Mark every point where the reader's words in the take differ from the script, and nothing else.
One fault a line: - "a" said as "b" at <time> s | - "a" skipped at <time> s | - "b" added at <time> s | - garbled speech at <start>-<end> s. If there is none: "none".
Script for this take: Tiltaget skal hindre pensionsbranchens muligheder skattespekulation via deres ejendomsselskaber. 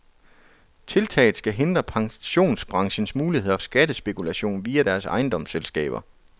none